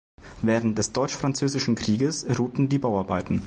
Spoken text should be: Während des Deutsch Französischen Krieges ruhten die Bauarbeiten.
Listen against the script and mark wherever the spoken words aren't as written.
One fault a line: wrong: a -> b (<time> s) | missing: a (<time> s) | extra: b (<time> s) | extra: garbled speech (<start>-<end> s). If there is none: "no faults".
no faults